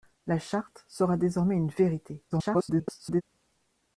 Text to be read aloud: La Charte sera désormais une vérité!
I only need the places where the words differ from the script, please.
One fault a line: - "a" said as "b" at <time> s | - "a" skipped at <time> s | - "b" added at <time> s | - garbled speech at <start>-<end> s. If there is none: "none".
- garbled speech at 2.3-3.2 s